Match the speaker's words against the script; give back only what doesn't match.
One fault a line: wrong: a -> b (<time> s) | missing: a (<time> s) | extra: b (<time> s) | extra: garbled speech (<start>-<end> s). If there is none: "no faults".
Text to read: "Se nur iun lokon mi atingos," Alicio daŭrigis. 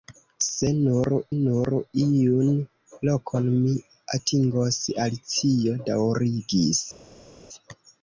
extra: nur (1.4 s)